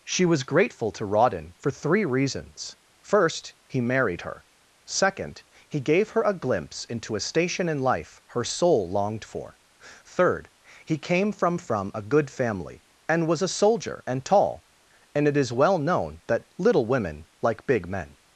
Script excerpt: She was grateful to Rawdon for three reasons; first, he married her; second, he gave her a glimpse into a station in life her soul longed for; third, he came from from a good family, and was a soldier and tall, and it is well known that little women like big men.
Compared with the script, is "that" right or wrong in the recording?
right